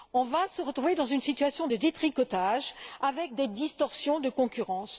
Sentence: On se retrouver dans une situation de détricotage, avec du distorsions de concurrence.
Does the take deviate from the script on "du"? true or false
true